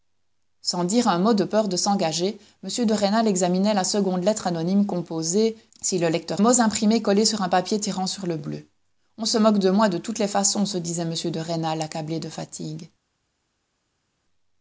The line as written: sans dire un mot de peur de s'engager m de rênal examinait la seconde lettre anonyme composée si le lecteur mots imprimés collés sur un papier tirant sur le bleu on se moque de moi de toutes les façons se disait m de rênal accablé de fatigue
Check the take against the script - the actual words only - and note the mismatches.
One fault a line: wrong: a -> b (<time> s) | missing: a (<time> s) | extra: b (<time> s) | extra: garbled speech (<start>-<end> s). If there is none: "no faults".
no faults